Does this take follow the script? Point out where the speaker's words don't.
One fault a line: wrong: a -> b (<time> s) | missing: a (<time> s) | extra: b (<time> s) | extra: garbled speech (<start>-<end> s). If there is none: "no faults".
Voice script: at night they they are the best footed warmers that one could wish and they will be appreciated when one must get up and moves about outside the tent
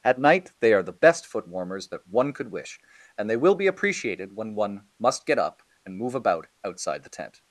missing: they (0.7 s)
wrong: footed -> foot (1.2 s)
wrong: moves -> move (6.0 s)